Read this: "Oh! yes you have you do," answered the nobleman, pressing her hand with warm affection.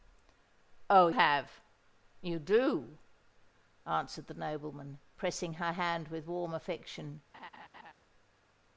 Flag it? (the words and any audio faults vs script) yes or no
yes